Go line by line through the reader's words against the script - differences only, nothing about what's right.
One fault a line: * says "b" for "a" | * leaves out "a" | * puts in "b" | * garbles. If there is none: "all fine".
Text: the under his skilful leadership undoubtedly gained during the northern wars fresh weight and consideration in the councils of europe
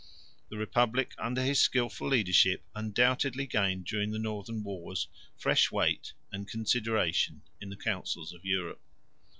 * puts in "republic"